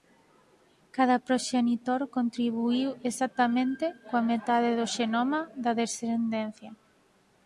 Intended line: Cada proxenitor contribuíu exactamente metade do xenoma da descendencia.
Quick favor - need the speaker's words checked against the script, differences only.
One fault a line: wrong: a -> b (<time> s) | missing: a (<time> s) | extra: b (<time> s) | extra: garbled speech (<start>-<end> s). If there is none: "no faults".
extra: coa (4.1 s)